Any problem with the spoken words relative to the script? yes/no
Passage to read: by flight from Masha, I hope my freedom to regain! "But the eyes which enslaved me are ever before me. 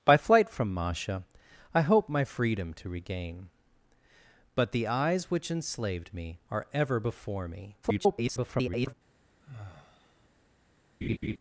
yes